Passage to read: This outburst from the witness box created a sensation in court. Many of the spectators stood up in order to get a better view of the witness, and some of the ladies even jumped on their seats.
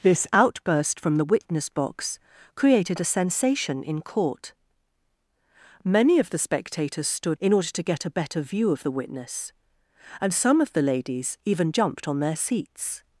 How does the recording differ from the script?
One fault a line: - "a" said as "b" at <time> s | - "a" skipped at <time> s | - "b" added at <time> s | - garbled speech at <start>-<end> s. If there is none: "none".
- "up" skipped at 7.4 s